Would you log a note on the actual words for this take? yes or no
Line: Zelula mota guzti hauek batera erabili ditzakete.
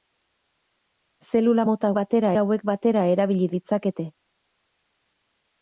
yes